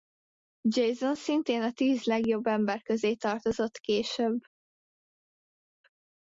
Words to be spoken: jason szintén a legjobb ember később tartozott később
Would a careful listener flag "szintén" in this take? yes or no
no